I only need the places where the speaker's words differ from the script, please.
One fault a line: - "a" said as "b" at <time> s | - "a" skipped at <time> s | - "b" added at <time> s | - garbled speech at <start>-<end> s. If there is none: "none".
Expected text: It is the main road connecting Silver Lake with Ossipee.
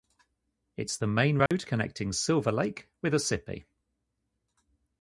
none